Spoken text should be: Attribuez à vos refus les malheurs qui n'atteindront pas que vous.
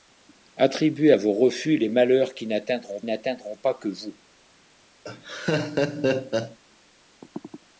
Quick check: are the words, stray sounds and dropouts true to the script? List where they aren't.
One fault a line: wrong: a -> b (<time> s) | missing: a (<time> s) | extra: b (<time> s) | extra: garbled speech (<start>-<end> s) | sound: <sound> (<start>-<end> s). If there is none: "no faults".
extra: n'atteindront (3.0 s)
sound: laugh (5.0-6.6 s)